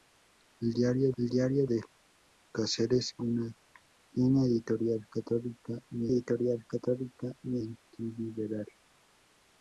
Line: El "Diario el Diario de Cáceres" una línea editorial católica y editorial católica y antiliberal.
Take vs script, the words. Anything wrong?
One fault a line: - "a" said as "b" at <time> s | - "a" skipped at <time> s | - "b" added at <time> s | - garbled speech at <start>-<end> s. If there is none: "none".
none